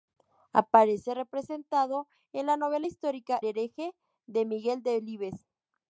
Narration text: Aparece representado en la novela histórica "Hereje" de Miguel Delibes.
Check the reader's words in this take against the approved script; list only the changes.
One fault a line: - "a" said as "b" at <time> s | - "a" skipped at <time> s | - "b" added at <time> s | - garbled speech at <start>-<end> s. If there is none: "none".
none